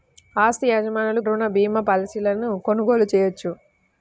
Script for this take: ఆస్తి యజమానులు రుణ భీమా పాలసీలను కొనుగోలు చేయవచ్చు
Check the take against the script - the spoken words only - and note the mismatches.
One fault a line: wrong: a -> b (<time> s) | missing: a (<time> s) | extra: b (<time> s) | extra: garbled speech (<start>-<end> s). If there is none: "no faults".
no faults